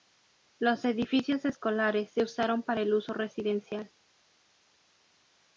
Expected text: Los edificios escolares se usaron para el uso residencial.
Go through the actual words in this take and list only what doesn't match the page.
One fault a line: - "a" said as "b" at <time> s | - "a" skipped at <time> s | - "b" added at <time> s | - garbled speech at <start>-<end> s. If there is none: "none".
none